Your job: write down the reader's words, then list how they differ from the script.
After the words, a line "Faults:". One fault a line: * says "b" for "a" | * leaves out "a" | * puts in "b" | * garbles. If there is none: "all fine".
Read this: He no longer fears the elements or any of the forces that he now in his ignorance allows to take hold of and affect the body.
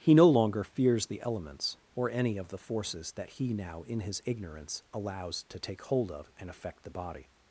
He no longer fears the elements or any of the forces that he now in his ignorance allows to take hold of and affect the body.
Faults:
all fine